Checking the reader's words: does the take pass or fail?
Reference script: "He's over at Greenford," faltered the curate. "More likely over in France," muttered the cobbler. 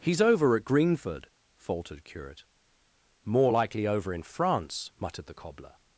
fail